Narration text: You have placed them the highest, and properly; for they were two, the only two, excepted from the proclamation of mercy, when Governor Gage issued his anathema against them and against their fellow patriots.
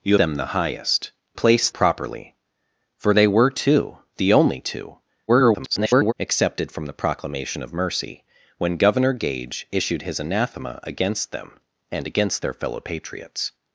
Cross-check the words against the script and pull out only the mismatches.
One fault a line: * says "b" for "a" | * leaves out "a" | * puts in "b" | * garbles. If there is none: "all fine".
* leaves out "have placed"
* says "placed" for "and"
* garbles